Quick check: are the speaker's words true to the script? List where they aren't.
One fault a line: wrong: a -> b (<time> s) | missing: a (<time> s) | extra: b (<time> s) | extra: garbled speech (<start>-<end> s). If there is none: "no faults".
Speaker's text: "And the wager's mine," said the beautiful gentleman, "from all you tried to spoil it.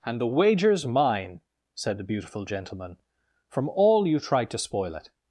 no faults